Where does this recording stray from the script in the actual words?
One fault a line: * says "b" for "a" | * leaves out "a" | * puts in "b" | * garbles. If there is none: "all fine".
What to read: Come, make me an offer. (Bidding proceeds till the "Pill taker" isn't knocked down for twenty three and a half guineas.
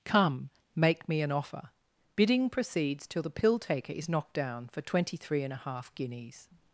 * says "is" for "isn't"